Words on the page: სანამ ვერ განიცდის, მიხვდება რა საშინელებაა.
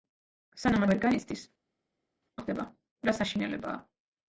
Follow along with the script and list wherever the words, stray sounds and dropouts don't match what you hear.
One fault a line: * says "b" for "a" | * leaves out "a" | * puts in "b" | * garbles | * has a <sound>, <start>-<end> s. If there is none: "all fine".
all fine